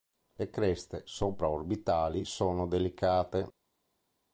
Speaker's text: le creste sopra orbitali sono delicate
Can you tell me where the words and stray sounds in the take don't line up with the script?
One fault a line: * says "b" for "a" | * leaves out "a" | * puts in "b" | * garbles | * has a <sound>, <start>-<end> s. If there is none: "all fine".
all fine